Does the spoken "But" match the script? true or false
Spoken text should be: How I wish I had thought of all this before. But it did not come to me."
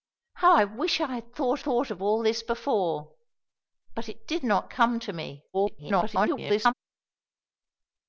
true